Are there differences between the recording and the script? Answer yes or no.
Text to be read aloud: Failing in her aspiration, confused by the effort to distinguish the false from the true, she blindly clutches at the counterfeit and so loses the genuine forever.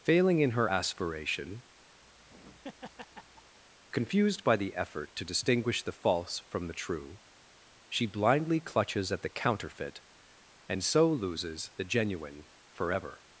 no